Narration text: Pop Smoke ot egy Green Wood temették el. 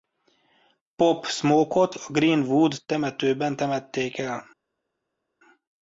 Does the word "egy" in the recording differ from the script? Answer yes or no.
yes